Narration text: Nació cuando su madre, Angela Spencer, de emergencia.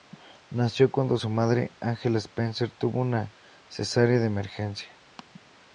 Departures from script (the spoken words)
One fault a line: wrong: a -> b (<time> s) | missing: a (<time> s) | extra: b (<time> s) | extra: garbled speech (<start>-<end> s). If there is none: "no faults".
extra: tuvo una cesárea (2.7 s)